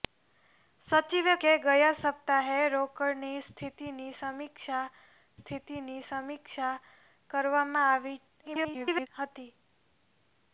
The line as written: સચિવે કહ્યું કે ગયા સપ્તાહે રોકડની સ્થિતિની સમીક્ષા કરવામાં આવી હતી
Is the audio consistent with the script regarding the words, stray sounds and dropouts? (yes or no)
no